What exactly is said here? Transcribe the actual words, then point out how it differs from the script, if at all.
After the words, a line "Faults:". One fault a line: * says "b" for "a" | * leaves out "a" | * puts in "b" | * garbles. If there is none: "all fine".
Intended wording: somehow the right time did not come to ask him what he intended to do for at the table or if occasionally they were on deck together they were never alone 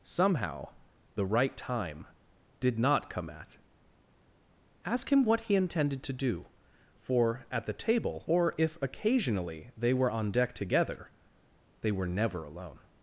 somehow the right time did not come at ask him what he intended to do for at the table or if occasionally they were on deck together they were never alone
Faults:
* says "at" for "to"